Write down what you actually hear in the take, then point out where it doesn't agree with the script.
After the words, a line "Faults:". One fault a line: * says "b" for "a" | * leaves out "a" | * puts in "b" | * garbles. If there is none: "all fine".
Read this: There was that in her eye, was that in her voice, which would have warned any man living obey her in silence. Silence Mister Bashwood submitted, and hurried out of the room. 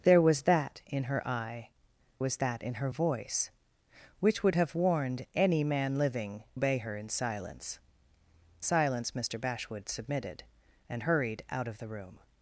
There was that in her eye, was that in her voice, which would have warned any man living obey her in silence. Silence Mister Bashwood submitted, and hurried out of the room.
Faults:
all fine